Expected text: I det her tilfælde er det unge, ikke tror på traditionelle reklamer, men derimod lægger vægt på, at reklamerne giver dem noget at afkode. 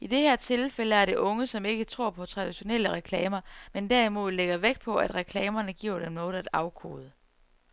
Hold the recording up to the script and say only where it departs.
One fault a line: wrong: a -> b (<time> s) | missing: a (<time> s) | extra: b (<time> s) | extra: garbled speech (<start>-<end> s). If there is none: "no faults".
extra: som (1.5 s)